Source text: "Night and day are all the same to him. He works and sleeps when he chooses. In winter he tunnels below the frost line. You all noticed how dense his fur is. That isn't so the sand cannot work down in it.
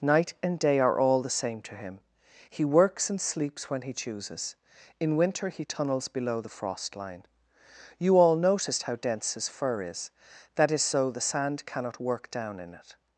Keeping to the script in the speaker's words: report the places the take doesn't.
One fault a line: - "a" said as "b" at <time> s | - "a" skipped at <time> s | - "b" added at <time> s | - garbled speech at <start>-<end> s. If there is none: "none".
- "isn't" said as "is" at 10.7 s